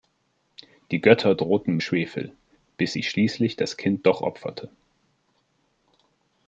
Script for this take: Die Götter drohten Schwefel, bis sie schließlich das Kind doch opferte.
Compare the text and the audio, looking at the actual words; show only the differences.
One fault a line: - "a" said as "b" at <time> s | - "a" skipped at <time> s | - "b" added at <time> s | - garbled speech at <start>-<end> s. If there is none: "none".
none